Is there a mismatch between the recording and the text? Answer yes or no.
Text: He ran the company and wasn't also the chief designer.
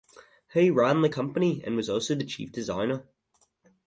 yes